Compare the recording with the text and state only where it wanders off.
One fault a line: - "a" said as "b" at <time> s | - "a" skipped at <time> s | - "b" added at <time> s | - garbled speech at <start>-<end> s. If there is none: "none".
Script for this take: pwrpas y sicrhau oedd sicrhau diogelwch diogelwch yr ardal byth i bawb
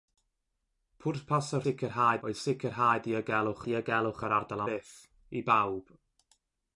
none